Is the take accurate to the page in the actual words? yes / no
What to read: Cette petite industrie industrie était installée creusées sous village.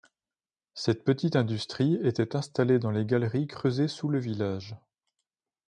no